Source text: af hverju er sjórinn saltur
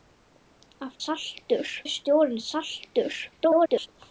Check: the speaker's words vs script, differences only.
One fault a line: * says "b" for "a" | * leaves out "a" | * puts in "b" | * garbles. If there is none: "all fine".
* says "saltur" for "hverju"
* garbles